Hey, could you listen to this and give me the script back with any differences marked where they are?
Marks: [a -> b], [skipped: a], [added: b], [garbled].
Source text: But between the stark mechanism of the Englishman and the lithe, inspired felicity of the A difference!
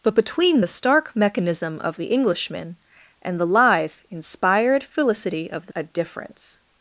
But between the stark mechanism of the Englishman and the lithe, inspired felicity of the A difference!